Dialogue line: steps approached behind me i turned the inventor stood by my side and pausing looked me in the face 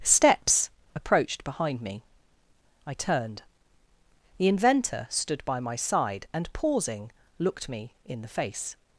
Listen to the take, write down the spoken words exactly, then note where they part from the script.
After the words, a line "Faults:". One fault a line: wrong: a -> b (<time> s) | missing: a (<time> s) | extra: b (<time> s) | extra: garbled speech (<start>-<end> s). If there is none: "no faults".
steps approached behind me i turned the inventor stood by my side and pausing looked me in the face
Faults:
no faults